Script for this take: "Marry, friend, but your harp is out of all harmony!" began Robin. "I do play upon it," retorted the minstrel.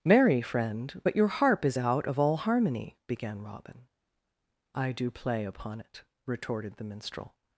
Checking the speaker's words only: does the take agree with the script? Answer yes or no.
yes